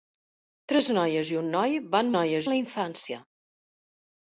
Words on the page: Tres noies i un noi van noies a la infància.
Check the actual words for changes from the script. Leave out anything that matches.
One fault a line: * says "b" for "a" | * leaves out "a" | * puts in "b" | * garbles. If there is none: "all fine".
all fine